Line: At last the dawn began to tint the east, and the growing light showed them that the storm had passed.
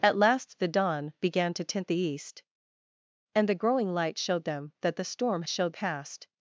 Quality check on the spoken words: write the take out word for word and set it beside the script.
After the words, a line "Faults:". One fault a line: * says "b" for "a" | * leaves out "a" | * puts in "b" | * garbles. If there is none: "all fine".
At last the dawn began to tint the east, and the growing light showed them that the storm showed passed.
Faults:
* says "showed" for "had"